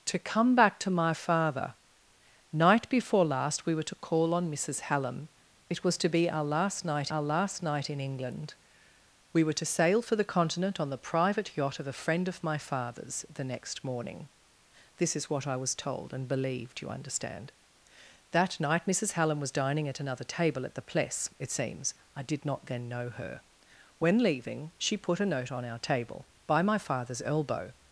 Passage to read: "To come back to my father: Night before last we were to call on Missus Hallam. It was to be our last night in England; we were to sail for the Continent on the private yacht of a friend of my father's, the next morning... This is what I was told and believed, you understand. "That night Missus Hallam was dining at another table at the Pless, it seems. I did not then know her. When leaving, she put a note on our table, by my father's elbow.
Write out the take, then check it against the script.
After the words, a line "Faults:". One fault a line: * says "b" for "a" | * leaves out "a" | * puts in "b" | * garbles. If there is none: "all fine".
"To come back to my father: Night before last we were to call on Missus Hallam. It was to be our last night our last night in England; we were to sail for the Continent on the private yacht of a friend of my father's, the next morning... This is what I was told and believed, you understand. "That night Missus Hallam was dining at another table at the Pless, it seems. I did not then know her. When leaving, she put a note on our table, by my father's elbow.
Faults:
* puts in "our last night"